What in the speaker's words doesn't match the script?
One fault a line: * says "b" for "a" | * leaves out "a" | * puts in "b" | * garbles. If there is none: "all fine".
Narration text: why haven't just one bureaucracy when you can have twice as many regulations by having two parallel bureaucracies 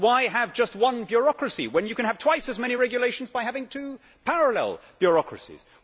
* says "have" for "haven't"